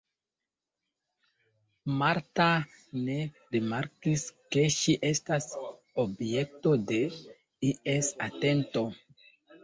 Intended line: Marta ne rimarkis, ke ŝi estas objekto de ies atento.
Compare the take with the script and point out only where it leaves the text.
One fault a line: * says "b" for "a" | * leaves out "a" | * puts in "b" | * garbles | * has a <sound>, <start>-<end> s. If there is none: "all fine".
all fine